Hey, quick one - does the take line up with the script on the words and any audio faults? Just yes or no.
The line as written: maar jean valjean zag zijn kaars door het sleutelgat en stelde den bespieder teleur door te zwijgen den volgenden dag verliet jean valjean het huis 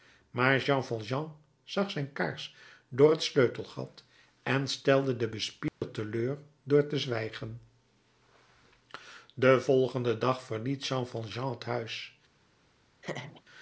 no